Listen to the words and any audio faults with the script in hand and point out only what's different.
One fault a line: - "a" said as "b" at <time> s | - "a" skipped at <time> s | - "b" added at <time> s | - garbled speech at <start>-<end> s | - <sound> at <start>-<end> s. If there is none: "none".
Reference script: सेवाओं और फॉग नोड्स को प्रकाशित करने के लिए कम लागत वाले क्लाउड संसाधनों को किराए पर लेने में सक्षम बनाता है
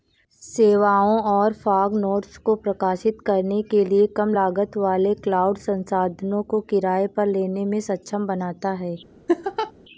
- laugh at 9.3-9.7 s